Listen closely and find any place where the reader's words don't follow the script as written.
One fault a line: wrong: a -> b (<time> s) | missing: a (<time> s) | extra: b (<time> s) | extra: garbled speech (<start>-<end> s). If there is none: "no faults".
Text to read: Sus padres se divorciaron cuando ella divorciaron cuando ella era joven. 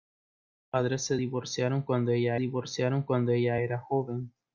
no faults